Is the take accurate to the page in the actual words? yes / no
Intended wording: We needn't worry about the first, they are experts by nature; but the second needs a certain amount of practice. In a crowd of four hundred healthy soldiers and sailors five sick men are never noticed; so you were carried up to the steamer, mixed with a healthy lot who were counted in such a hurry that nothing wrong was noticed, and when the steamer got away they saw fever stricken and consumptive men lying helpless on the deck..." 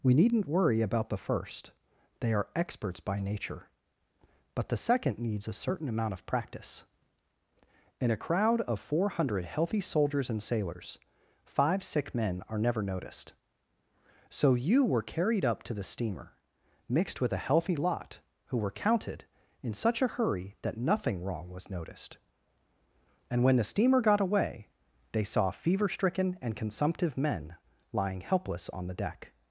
yes